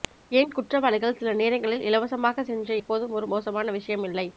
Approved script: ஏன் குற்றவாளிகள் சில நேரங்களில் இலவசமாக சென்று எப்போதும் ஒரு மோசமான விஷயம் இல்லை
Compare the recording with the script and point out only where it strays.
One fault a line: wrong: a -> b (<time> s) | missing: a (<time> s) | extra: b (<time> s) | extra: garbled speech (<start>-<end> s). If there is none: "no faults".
no faults